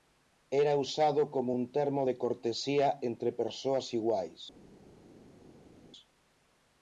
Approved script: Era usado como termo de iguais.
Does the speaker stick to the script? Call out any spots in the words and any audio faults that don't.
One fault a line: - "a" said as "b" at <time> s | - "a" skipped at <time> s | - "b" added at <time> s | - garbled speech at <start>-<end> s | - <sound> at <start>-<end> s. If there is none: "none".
- "un" added at 1.5 s
- "cortesía entre persoas" added at 2.2 s